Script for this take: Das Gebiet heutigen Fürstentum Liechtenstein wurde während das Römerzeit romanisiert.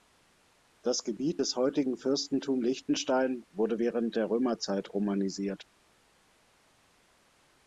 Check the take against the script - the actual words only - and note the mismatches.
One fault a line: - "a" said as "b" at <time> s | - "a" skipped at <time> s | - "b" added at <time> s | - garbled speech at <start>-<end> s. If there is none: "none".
- "des" added at 1.4 s
- "das" said as "der" at 4.1 s